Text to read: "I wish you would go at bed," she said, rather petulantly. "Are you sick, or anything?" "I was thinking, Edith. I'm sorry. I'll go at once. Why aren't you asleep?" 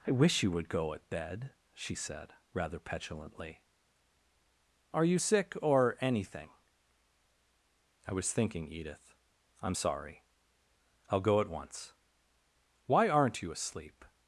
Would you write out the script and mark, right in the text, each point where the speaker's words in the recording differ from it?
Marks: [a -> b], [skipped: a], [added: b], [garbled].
"I wish you would go at bed," she said, rather petulantly. "Are you sick, or anything?" "I was thinking, Edith. I'm sorry. I'll go at once. Why aren't you asleep?"